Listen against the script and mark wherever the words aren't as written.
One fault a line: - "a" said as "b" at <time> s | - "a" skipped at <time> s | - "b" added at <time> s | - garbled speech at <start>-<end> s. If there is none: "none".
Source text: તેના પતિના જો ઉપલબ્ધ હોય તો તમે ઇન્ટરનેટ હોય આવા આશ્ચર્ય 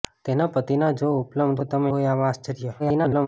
- "હોય" skipped at 1.6 s
- "ઇન્ટરનેટ" skipped at 1.9 s
- garbled speech at 2.8-3.3 s